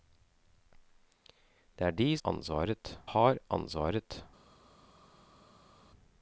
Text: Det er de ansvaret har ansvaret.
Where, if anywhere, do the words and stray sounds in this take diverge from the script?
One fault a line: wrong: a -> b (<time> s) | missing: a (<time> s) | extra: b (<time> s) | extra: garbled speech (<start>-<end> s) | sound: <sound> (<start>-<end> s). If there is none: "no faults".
no faults